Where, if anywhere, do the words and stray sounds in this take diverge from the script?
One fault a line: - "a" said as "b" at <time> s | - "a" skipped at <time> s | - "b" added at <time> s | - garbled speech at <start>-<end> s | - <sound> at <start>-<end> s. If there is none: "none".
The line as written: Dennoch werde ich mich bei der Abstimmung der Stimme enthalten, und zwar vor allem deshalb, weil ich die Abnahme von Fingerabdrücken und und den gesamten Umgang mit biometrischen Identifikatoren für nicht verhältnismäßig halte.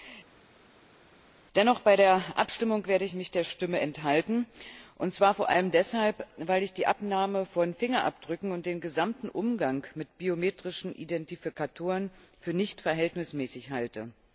- "und" skipped at 8.7 s